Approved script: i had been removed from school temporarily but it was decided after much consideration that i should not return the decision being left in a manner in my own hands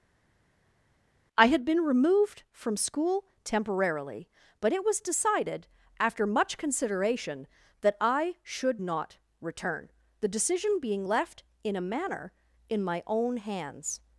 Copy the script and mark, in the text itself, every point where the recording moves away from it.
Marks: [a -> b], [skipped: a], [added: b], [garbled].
i had been removed from school temporarily but it was decided after much consideration that i should not return the decision being left in a manner in my own hands